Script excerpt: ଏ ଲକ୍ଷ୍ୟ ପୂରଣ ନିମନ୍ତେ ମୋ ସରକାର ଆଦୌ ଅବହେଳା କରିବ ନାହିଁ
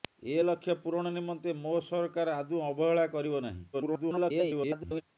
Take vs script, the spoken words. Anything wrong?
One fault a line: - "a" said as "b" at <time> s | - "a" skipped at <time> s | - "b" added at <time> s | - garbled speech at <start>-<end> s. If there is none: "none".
- garbled speech at 3.7-5.0 s